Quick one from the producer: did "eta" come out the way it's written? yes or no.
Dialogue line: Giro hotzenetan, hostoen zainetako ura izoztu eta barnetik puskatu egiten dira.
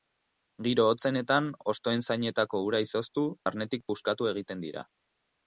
no